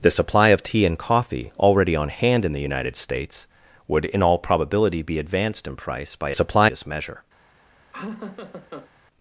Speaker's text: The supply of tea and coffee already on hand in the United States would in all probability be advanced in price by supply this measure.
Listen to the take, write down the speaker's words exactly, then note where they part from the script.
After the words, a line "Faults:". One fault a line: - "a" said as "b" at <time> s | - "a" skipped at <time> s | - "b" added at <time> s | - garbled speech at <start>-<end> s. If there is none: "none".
The supply of tea and coffee already on hand in the United States would in all probability be advanced in price by supply this measure.
Faults:
none